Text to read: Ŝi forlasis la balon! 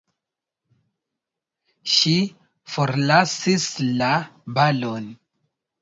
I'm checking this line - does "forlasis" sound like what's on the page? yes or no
yes